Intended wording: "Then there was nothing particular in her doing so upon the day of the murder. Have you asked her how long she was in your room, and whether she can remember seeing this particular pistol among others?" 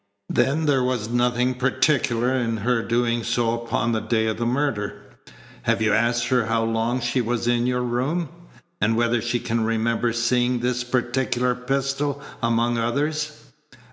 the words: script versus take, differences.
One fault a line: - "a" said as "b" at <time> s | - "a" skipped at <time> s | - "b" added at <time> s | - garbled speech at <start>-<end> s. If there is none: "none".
none